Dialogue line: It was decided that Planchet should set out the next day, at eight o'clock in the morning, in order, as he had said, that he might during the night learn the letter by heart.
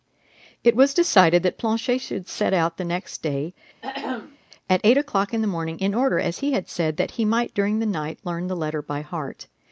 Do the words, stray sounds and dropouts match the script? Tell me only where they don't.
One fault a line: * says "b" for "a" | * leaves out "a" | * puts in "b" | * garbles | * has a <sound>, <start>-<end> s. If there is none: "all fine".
* has a throat clearing, 3.8-4.4 s